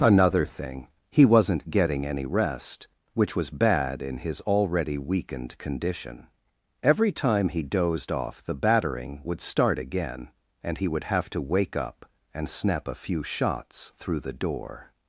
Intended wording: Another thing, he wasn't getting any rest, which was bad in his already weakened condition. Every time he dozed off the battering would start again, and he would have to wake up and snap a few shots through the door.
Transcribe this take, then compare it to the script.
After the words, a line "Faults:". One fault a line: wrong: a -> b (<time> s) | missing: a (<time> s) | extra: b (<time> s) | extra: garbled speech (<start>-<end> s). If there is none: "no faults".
Another thing, he wasn't getting any rest, which was bad in his already weakened condition. Every time he dozed off the battering would start again, and he would have to wake up and snap a few shots through the door.
Faults:
no faults